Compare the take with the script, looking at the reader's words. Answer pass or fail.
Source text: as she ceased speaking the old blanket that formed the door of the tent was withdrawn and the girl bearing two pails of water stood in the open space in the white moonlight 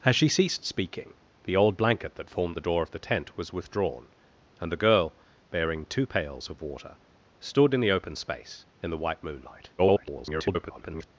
fail